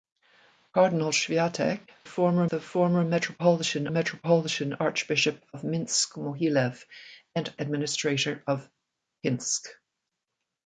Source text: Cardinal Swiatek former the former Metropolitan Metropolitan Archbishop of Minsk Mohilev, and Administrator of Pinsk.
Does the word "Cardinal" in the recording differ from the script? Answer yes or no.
no